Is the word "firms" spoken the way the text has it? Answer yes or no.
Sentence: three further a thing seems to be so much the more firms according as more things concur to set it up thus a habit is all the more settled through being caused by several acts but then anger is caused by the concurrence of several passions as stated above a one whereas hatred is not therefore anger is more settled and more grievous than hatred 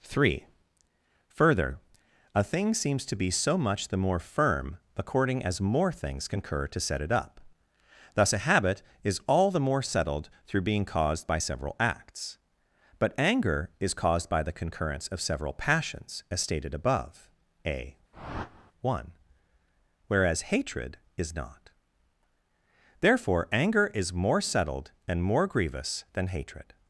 no